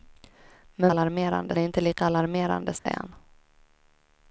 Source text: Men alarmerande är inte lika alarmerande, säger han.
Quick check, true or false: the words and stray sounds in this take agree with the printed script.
false